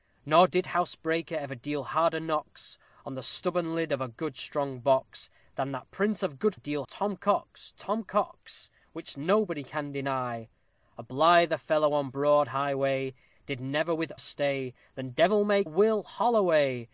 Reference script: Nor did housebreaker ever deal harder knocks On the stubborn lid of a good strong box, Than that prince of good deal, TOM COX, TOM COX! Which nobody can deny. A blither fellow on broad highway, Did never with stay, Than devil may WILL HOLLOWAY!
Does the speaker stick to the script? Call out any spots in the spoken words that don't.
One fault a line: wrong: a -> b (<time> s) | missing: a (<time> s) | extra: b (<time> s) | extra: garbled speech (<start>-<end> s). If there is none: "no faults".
no faults